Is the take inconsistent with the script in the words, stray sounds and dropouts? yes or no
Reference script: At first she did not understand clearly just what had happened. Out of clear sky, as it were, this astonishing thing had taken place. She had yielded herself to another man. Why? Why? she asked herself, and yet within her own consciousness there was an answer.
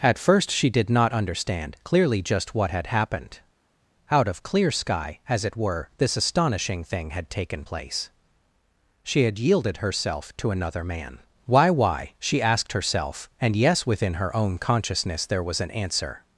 yes